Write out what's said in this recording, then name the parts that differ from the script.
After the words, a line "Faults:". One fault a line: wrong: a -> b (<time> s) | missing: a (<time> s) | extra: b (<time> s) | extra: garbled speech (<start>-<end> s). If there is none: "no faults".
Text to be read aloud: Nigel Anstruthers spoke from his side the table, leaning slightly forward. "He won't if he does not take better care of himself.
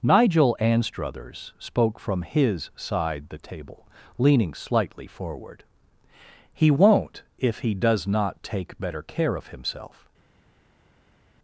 Nigel Anstruthers spoke from his side the table, leaning slightly forward. "He won't if he does not take better care of himself.
Faults:
no faults